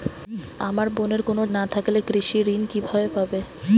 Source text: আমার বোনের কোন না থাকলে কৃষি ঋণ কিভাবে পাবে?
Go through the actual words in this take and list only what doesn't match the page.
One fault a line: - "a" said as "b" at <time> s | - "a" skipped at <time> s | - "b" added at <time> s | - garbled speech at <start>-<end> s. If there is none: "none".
none